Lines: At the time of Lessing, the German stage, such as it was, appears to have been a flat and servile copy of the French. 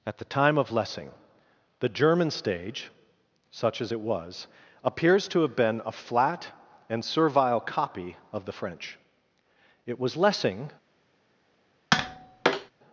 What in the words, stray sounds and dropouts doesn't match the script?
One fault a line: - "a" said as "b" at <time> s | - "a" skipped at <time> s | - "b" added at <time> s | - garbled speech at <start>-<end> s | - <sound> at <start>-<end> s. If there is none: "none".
- "It was Lessing" added at 9.9 s
- tap at 11.9-12.7 s